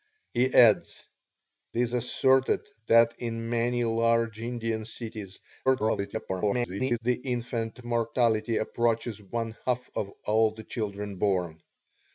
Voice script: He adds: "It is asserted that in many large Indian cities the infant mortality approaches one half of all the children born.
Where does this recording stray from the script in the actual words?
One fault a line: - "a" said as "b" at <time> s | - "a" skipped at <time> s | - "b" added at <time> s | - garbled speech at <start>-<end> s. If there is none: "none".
- "It" skipped at 1.1 s
- garbled speech at 5.7-7.0 s